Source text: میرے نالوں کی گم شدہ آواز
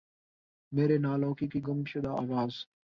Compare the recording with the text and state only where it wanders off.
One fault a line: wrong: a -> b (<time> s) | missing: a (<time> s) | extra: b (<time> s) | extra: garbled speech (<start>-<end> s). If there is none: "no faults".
extra: کی (1.5 s)